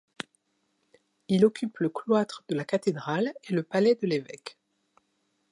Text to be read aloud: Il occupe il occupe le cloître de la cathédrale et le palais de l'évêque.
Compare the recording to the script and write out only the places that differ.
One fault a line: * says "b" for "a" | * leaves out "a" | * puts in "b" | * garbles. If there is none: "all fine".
* leaves out "il occupe"